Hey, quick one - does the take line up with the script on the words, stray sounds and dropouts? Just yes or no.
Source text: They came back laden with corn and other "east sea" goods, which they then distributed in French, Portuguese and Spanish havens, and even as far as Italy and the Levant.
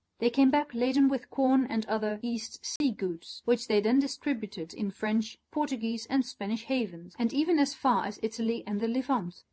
no